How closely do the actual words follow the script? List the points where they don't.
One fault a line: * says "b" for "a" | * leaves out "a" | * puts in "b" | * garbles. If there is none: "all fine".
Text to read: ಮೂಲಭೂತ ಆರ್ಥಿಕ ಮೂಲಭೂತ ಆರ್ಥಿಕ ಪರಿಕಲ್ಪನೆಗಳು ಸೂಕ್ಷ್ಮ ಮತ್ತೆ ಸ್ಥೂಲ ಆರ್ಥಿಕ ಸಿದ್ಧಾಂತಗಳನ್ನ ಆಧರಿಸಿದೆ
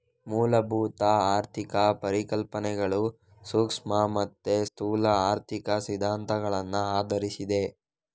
* leaves out "ಮೂಲಭೂತ ಆರ್ಥಿಕ"